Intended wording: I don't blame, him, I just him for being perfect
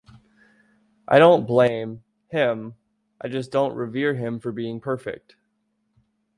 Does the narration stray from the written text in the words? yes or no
yes